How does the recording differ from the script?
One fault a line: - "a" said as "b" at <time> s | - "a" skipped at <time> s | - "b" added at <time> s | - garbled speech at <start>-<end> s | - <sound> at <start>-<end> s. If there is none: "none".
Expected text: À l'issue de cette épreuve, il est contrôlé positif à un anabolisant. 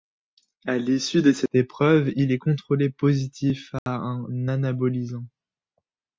- dropout at 3.8-3.9 s